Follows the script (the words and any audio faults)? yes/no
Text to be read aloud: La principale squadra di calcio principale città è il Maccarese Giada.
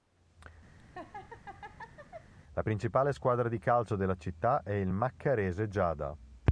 no